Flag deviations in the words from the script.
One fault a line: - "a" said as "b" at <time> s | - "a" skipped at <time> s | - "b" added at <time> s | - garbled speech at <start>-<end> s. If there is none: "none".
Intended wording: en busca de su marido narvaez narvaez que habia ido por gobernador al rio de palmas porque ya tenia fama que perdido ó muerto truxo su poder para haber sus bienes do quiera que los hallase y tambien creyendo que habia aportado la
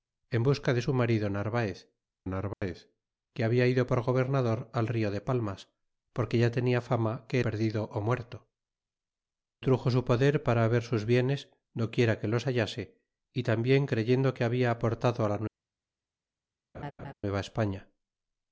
none